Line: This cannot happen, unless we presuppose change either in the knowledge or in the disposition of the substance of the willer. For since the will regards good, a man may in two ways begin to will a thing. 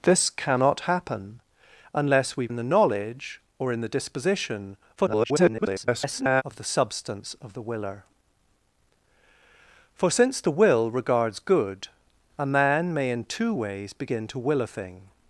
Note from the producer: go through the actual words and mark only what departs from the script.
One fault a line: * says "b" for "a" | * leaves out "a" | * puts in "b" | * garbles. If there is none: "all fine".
* leaves out "presuppose change either"
* garbles